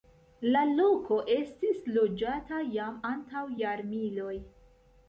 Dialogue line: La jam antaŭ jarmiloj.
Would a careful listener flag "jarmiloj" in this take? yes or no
no